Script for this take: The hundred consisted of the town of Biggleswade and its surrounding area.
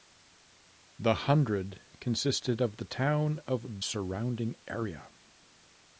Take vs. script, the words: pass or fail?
fail